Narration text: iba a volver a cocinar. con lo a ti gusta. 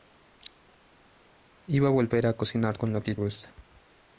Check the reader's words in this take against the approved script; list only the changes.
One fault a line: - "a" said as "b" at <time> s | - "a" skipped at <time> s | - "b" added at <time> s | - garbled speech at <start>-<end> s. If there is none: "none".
none